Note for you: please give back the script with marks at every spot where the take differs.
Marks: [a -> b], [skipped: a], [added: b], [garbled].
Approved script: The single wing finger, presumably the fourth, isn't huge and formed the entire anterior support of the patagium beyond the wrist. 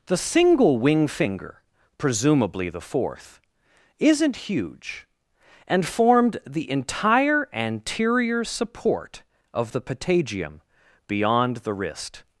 The single wing finger, presumably the fourth, isn't huge and formed the entire anterior support of the patagium beyond the wrist.